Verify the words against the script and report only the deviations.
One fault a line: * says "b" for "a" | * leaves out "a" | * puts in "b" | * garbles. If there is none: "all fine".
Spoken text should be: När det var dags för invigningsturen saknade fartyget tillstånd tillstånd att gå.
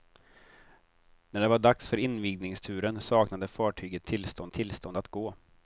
all fine